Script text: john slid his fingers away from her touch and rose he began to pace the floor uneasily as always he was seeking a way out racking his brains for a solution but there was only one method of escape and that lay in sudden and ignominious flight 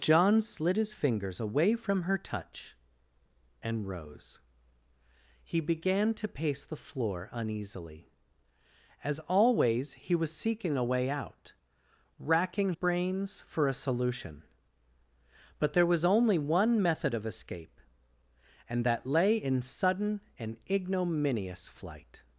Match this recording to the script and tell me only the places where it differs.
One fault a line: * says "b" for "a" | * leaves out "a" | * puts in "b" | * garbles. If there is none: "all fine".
* leaves out "his"